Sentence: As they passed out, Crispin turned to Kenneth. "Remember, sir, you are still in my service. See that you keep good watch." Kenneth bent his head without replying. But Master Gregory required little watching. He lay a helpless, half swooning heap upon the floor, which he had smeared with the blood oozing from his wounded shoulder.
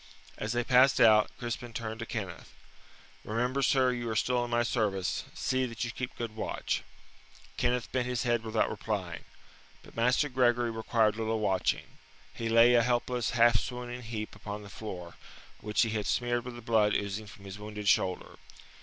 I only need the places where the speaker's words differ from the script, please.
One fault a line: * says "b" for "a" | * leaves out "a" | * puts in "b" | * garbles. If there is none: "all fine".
all fine